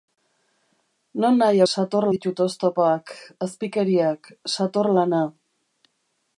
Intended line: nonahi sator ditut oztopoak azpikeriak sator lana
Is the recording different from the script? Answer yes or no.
no